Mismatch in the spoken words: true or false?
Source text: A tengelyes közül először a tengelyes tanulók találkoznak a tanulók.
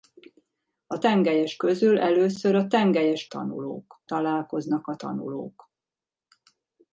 false